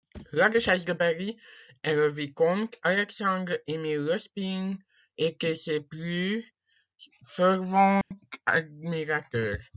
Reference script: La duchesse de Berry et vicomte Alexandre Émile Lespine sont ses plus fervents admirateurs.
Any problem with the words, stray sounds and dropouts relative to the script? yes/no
yes